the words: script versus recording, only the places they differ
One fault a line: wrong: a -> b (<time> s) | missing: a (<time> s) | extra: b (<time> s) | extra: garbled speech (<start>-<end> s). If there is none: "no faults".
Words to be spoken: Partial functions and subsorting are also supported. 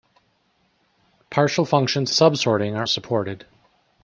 missing: and (2.1 s)
missing: also (2.9 s)